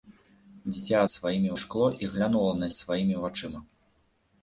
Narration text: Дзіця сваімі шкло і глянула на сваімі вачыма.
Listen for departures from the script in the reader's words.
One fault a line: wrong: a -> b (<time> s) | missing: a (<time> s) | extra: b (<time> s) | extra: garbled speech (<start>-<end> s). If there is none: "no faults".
no faults